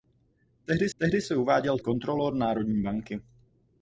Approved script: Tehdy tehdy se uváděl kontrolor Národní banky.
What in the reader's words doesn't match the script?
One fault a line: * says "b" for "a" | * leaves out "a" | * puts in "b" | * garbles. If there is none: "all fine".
all fine